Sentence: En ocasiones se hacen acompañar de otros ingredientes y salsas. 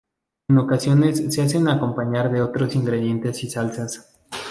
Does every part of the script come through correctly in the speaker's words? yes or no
yes